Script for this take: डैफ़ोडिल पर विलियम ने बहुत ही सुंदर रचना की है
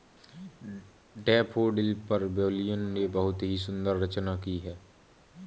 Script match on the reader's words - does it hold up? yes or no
yes